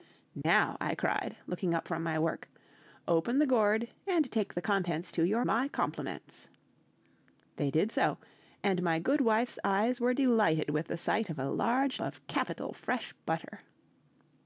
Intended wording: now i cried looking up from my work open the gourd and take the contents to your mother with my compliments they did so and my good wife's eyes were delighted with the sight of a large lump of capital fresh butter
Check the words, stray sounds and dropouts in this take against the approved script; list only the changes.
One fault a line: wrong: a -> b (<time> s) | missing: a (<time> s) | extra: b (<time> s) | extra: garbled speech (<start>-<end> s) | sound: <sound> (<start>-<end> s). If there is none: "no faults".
sound: dropout (0.4-0.4 s)
missing: mother with (5.4 s)
missing: lump (12.0 s)